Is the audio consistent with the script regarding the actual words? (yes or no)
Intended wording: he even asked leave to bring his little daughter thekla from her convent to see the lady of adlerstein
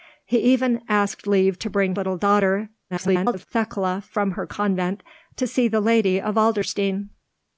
no